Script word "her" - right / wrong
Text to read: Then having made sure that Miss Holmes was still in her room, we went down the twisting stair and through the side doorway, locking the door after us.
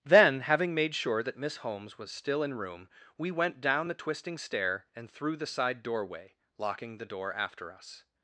wrong